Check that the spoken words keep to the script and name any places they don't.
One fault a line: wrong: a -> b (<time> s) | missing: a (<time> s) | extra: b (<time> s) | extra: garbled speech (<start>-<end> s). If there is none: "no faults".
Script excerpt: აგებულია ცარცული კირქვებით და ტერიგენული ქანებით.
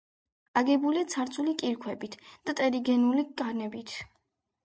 no faults